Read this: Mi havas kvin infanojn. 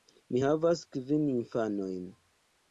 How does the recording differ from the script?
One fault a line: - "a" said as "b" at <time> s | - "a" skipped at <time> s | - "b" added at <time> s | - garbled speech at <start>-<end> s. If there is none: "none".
none